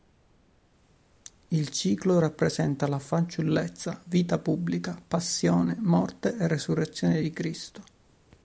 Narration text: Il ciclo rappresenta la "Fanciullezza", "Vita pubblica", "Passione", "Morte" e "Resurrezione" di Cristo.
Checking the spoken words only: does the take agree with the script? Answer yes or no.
yes